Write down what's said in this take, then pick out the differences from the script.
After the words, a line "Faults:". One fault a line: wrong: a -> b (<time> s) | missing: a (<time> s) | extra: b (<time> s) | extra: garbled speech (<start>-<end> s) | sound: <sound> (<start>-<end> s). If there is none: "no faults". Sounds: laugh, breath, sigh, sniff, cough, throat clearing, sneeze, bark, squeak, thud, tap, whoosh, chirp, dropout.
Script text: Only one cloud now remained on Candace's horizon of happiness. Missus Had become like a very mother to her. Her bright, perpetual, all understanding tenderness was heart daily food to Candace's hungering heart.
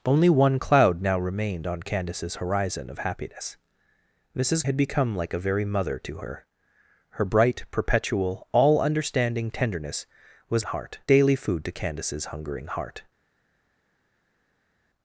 Only one cloud now remained on Candace's horizon of happiness. Missus Had become like a very mother to her. Her bright, perpetual, all understanding tenderness was heart daily food to Candace's hungering heart.
Faults:
no faults